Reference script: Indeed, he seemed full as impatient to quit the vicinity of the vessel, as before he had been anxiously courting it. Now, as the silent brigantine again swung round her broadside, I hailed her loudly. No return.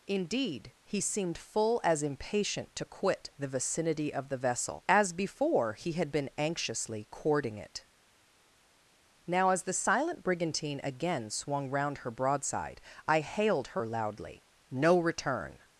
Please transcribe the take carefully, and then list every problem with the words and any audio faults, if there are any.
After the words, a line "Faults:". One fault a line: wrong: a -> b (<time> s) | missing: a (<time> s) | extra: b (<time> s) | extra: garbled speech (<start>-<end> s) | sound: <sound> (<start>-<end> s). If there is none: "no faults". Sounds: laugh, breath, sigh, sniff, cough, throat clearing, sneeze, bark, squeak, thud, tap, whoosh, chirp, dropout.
Indeed, he seemed full as impatient to quit the vicinity of the vessel, as before he had been anxiously courting it. Now, as the silent brigantine again swung round her broadside, I hailed her loudly. No return.
Faults:
no faults